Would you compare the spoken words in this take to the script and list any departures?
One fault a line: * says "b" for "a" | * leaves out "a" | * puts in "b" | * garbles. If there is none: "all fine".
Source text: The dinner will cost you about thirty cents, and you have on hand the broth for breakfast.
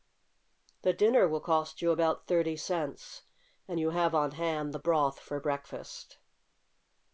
all fine